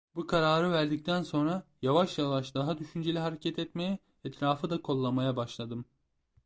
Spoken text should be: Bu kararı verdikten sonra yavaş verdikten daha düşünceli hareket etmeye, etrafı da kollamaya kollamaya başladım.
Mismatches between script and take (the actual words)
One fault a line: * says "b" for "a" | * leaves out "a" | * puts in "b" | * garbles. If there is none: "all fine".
* says "yavaş" for "verdikten"
* leaves out "kollamaya"